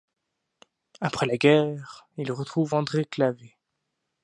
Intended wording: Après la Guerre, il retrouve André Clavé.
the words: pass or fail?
pass